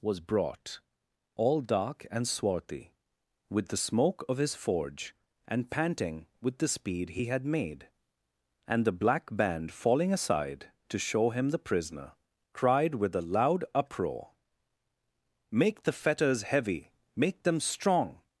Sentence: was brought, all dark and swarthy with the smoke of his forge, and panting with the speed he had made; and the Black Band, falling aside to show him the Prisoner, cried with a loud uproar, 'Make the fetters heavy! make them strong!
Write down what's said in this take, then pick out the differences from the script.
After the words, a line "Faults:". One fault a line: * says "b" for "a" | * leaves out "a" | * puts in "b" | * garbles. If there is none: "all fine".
was brought, all dark and swarthy with the smoke of his forge, and panting with the speed he had made; and the Black Band, falling aside to show him the Prisoner, cried with a loud uproar, 'Make the fetters heavy! make them strong!
Faults:
all fine